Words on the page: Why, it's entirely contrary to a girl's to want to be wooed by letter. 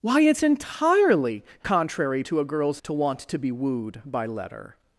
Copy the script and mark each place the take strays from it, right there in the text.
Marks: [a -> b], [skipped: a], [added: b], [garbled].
Why, it's entirely contrary to a girl's to want to be wooed by letter.